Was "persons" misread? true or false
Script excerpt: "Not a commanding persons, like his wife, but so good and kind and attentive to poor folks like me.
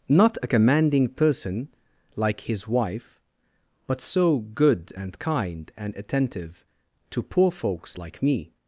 true